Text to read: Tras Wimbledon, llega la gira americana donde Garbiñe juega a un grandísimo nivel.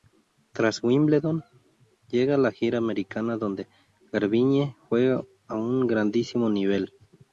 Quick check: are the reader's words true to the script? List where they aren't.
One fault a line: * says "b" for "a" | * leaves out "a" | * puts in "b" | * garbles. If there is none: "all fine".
all fine